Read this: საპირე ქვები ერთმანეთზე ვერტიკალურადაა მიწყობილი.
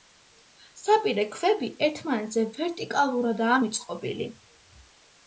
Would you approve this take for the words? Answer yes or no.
yes